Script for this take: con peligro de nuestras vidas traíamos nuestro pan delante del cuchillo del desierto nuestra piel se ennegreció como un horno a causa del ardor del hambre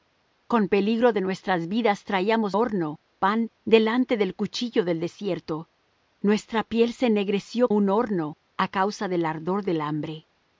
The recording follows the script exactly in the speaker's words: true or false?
false